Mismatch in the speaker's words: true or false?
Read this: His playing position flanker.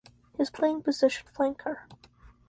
false